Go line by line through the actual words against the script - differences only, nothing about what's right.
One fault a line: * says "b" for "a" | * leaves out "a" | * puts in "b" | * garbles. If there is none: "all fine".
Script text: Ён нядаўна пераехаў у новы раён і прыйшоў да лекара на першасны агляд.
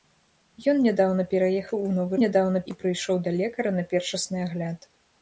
* says "нядаўна" for "раён"